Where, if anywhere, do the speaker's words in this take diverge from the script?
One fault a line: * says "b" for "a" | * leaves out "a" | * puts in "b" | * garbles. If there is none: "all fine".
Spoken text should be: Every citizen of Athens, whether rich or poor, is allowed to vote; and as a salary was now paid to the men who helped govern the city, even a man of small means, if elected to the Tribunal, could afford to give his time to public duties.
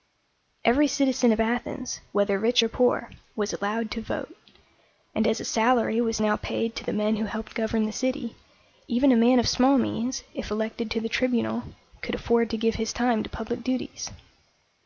* says "was" for "is"